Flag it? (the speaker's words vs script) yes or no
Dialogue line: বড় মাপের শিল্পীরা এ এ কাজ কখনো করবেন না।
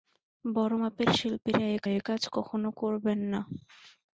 no